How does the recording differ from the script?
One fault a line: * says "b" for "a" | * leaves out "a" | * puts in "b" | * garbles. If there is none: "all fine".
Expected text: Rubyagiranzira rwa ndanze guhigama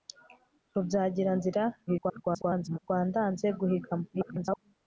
* garbles
* garbles